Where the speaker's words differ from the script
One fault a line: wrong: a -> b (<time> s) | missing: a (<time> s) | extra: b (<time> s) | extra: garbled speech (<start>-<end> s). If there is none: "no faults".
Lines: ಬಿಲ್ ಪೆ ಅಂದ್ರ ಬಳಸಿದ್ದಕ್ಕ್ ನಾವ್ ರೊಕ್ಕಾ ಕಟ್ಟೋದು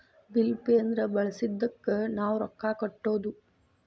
no faults